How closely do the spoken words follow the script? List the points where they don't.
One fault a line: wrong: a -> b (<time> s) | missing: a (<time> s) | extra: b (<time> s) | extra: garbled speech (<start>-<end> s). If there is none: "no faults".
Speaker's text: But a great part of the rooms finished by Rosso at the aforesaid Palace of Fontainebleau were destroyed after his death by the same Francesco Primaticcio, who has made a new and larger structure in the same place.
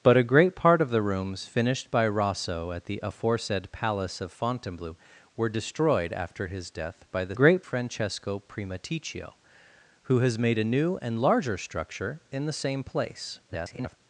wrong: same -> great (7.3 s)
extra: garbled speech (13.5-14.0 s)